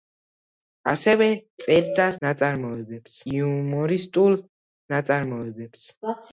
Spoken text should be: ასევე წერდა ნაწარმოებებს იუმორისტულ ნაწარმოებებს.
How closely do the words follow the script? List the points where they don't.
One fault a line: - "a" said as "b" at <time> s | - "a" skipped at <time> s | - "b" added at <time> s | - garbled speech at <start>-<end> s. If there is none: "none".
none